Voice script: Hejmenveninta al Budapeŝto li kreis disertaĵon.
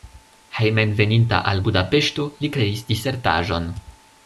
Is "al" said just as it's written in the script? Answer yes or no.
yes